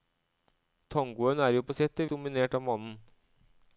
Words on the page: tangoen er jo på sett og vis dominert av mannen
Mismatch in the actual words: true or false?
true